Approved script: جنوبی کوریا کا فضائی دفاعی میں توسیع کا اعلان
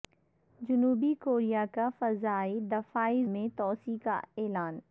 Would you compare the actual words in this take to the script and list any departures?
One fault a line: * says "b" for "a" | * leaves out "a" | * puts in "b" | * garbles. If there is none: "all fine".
all fine